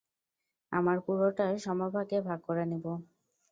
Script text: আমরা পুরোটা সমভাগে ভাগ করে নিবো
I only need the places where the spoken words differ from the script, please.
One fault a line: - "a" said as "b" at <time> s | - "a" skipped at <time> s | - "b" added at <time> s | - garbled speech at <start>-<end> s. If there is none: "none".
none